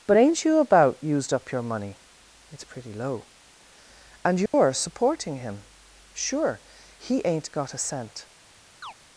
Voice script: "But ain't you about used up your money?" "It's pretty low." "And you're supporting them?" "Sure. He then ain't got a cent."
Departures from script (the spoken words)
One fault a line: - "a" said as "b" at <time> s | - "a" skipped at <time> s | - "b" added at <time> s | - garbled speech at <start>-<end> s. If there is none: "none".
- "them" said as "him" at 5.4 s
- "then" skipped at 7.2 s